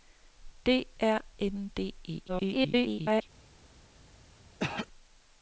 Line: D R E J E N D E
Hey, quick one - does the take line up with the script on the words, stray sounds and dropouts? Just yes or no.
no